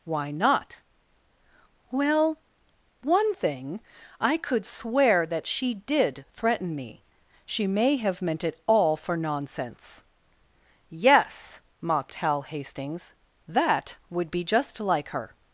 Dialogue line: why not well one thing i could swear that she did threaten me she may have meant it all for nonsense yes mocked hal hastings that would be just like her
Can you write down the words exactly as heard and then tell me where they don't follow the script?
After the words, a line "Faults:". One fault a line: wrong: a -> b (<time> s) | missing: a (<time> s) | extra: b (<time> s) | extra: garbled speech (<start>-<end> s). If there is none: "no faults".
why not well one thing i could swear that she did threaten me she may have meant it all for nonsense yes mocked hal hastings that would be just like her
Faults:
no faults